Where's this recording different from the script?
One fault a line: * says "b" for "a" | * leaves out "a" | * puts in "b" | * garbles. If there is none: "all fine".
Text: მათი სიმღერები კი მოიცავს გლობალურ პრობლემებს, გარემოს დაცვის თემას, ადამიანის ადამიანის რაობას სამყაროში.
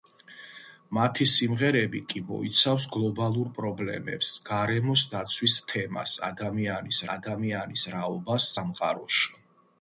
all fine